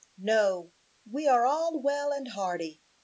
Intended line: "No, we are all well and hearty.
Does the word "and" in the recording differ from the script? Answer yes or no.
no